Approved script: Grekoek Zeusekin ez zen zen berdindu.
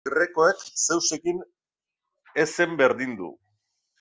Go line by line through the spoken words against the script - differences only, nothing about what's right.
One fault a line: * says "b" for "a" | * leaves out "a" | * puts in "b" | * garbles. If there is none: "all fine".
* leaves out "zen"